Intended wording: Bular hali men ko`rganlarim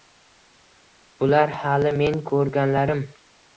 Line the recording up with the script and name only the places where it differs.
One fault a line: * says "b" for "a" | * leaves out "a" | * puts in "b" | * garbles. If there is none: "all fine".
all fine